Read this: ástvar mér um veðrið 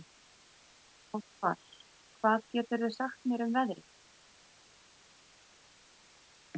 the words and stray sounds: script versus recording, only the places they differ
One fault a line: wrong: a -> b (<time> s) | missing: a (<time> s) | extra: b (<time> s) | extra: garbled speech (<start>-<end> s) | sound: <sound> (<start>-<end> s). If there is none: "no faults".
extra: hvað geturðu sagt (2.2 s)